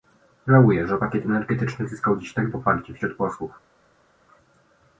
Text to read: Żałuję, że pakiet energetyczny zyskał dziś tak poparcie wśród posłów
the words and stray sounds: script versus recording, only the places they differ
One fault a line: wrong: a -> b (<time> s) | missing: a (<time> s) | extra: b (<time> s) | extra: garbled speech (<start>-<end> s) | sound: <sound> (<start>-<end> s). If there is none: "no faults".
no faults